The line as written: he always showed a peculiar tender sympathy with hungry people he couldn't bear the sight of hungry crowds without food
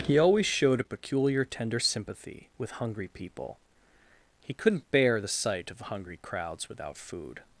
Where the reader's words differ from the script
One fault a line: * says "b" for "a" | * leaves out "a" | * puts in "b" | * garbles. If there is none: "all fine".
all fine